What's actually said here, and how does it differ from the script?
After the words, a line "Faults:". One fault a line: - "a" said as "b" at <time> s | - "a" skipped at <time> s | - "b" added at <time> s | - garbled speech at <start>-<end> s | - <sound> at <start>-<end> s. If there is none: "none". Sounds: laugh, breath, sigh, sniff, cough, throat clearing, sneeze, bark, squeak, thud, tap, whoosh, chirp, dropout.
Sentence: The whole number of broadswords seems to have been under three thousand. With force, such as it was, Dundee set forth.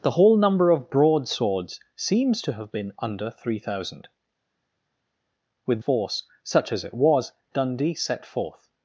The whole number of broadswords seems to have been under three thousand. With force, such as it was, Dundee set forth.
Faults:
none